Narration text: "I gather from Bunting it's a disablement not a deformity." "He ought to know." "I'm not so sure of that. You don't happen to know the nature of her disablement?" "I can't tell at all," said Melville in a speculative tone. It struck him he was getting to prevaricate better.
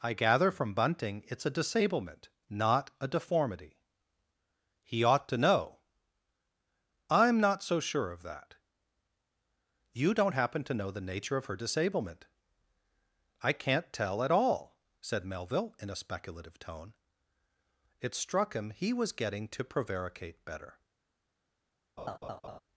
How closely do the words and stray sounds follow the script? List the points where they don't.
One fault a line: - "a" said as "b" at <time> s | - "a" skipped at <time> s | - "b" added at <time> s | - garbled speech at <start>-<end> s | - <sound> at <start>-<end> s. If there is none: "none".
- laugh at 22.0-22.6 s